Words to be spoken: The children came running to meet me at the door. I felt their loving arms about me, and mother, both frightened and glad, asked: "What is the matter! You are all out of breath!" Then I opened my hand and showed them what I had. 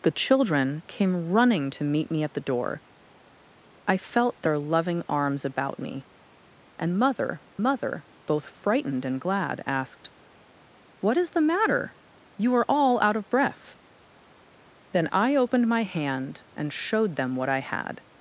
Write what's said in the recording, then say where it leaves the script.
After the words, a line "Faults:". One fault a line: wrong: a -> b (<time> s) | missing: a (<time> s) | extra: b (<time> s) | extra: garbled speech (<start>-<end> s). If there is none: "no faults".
The children came running to meet me at the door. I felt their loving arms about me, and mother mother, both frightened and glad, asked: "What is the matter! You are all out of breath!" Then I opened my hand and showed them what I had.
Faults:
extra: mother (7.6 s)